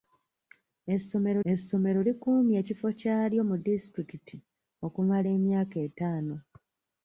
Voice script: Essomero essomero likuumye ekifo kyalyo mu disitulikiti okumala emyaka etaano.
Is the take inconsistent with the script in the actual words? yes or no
no